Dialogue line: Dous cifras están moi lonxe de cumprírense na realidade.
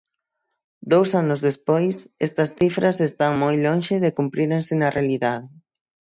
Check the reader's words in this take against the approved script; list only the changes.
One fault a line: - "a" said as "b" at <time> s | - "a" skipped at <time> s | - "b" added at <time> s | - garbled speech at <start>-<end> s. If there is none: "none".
- "anos despois estas" added at 1.2 s